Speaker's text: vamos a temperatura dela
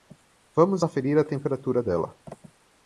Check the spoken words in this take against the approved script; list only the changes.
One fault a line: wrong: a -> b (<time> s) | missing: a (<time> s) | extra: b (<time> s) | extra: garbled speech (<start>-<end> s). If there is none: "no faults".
extra: aferir (0.8 s)